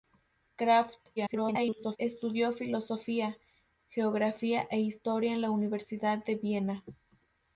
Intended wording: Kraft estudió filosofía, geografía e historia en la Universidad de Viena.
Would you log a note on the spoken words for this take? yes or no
yes